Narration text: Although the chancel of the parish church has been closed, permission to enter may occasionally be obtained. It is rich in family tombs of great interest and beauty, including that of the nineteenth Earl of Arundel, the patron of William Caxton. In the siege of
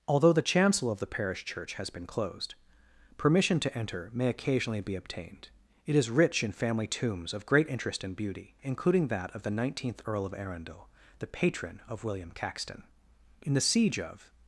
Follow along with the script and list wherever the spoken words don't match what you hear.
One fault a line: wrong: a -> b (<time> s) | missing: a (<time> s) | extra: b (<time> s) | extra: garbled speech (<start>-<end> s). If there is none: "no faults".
no faults